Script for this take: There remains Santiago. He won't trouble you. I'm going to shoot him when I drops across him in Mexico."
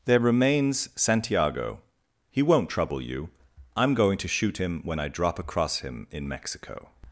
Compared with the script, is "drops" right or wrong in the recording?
wrong